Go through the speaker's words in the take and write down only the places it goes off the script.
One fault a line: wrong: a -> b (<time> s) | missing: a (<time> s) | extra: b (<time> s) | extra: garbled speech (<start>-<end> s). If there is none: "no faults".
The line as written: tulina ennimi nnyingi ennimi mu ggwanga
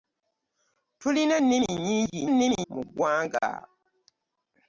no faults